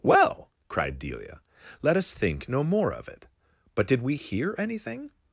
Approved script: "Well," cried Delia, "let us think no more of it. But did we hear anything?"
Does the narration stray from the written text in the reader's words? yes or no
no